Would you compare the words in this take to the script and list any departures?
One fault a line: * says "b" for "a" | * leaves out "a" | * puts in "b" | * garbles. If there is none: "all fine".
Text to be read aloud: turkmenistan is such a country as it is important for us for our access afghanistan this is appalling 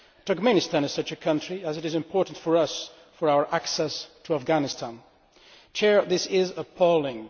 * puts in "to"